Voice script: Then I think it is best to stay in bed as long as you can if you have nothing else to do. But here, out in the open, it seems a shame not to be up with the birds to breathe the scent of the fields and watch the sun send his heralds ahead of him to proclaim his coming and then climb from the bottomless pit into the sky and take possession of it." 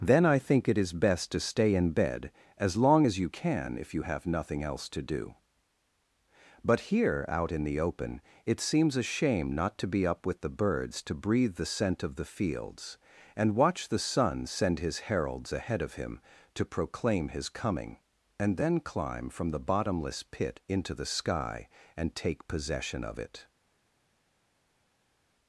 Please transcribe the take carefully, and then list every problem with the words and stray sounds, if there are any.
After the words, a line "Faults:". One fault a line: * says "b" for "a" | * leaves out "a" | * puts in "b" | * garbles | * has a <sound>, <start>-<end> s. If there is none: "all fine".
Then I think it is best to stay in bed as long as you can if you have nothing else to do. But here, out in the open, it seems a shame not to be up with the birds to breathe the scent of the fields and watch the sun send his heralds ahead of him to proclaim his coming and then climb from the bottomless pit into the sky and take possession of it."
Faults:
all fine